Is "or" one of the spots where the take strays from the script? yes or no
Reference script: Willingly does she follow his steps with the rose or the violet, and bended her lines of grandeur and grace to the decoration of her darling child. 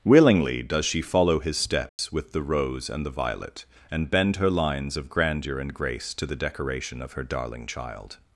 yes